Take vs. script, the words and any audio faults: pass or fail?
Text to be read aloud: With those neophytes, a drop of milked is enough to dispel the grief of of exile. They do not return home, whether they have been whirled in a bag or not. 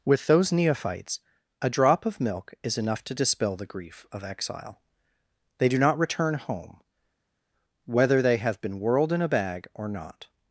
fail